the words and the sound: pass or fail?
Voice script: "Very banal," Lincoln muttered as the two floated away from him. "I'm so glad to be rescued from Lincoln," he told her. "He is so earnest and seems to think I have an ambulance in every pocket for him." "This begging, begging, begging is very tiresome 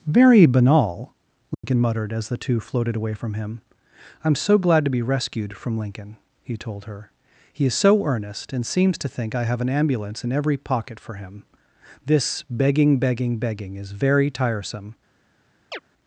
fail